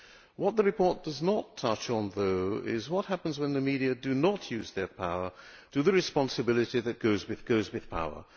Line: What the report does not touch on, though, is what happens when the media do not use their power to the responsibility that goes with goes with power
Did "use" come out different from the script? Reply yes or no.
no